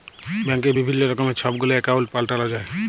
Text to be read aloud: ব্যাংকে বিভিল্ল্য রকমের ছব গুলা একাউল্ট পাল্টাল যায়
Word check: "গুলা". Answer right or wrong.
right